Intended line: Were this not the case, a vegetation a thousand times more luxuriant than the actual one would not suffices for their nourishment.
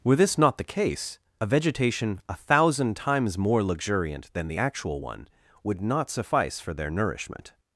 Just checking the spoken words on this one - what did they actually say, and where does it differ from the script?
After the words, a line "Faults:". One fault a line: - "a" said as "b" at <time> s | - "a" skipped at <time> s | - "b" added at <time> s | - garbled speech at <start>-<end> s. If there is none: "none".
Were this not the case, a vegetation a thousand times more luxuriant than the actual one would not suffice for their nourishment.
Faults:
- "suffices" said as "suffice" at 6.1 s